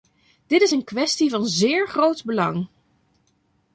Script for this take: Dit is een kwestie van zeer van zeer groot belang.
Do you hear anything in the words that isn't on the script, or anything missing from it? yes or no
yes